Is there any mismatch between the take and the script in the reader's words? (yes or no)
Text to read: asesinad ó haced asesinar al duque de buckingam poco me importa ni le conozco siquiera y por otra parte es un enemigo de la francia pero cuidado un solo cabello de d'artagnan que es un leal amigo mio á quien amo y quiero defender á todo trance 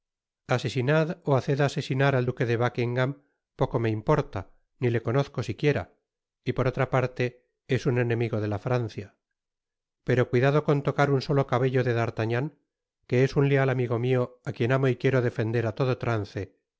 yes